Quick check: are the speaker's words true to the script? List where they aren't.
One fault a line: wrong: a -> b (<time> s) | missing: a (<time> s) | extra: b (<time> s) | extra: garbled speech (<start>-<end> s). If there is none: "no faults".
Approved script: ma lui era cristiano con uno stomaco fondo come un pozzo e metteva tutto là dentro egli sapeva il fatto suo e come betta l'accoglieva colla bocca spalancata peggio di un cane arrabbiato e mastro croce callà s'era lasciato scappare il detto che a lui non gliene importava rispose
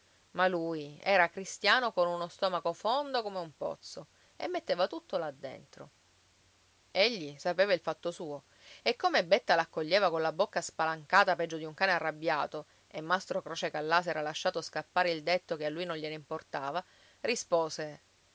no faults